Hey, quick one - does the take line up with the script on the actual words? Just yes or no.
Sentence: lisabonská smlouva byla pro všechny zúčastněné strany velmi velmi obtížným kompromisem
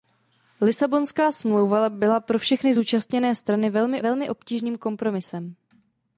yes